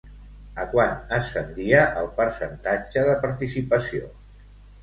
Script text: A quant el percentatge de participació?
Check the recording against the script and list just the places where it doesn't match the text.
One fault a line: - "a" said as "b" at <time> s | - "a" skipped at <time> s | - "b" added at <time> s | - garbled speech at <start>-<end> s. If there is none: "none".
- "ascendia" added at 1.2 s